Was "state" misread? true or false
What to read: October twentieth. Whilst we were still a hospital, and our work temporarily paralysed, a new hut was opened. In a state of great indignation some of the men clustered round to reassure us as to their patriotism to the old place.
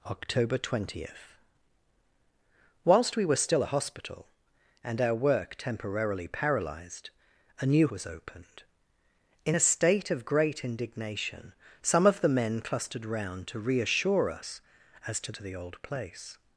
false